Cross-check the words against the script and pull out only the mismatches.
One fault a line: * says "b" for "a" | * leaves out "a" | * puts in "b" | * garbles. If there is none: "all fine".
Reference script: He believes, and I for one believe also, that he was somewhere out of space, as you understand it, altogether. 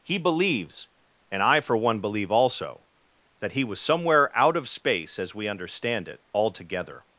* says "we" for "you"